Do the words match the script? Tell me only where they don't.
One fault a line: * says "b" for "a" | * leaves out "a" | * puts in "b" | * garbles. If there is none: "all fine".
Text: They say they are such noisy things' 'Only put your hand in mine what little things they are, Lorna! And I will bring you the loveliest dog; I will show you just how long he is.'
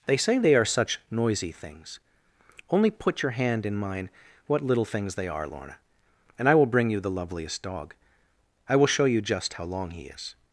all fine